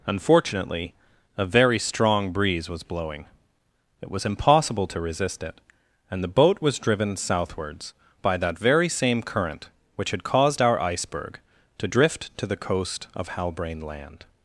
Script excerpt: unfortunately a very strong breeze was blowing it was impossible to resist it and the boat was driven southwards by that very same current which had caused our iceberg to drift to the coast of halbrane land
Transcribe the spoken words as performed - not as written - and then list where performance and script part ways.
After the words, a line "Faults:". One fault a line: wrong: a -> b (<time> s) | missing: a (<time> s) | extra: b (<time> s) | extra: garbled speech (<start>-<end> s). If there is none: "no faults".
unfortunately a very strong breeze was blowing it was impossible to resist it and the boat was driven southwards by that very same current which had caused our iceberg to drift to the coast of halbrane land
Faults:
no faults